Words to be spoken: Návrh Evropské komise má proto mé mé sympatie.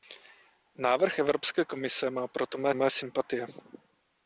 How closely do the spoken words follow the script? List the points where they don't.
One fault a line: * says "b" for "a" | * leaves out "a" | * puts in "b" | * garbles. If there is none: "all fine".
all fine